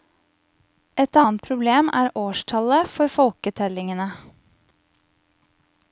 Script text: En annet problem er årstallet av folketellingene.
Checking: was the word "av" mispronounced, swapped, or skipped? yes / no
yes